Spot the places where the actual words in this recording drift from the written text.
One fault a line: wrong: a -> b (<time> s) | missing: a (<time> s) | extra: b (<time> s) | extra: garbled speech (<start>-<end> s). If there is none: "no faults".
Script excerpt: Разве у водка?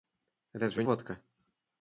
no faults